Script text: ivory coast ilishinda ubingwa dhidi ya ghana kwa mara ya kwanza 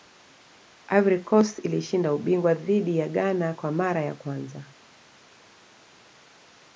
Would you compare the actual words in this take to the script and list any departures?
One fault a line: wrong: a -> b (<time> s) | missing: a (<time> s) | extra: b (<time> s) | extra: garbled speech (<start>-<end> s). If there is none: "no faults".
no faults